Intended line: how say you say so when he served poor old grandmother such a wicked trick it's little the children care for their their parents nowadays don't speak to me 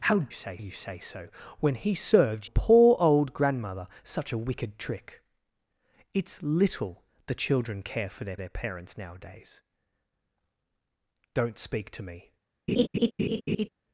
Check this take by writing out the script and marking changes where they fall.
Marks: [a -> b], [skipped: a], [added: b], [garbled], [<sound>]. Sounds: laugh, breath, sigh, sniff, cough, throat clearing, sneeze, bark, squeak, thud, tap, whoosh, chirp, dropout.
how say you say so when he served poor old grandmother such a wicked trick it's little the children care for their their parents nowadays don't speak to me [laugh]